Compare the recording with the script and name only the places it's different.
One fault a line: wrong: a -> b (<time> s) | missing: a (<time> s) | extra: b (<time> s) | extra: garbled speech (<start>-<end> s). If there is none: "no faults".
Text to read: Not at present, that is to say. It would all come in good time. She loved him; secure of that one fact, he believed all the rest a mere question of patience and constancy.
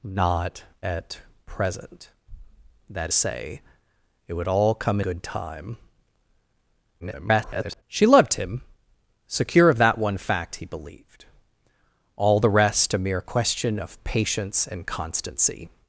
missing: is to (3.1 s)
missing: in (5.0 s)
extra: garbled speech (7.0-7.8 s)